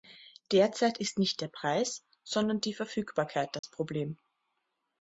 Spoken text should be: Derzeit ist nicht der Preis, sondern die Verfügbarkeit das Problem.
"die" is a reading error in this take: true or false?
false